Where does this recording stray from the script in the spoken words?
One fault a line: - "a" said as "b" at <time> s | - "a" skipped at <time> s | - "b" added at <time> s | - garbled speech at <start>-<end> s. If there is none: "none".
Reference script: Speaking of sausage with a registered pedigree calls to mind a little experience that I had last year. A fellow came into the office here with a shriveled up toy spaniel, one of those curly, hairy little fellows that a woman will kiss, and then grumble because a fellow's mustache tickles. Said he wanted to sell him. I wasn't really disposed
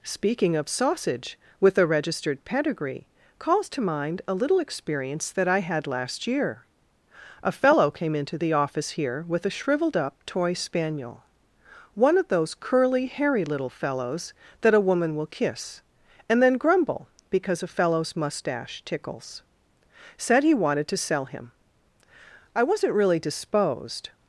none